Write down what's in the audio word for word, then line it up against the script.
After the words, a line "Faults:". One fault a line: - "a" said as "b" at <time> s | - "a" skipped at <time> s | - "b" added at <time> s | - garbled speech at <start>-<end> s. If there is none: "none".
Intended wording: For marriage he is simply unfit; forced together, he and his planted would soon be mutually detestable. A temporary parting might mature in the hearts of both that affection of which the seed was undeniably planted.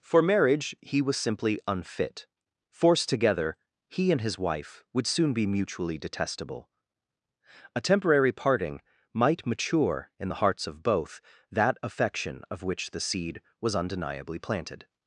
For marriage he was simply unfit; forced together, he and his wife would soon be mutually detestable. A temporary parting might mature in the hearts of both that affection of which the seed was undeniably planted.
Faults:
- "is" said as "was" at 1.0 s
- "planted" said as "wife" at 4.4 s